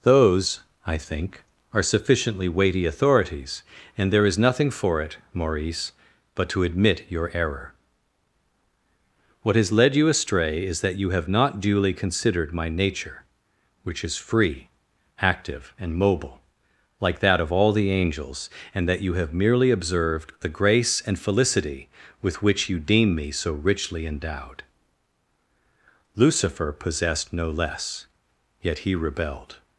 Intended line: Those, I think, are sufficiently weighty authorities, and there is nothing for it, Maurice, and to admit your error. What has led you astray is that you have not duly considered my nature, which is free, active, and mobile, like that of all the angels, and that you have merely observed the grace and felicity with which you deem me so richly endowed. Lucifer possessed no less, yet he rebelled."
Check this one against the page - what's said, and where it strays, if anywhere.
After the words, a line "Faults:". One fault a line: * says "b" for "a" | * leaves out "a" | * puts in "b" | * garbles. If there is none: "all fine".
Those, I think, are sufficiently weighty authorities, and there is nothing for it, Maurice, but to admit your error. What has led you astray is that you have not duly considered my nature, which is free, active, and mobile, like that of all the angels, and that you have merely observed the grace and felicity with which you deem me so richly endowed. Lucifer possessed no less, yet he rebelled."
Faults:
* says "but" for "and"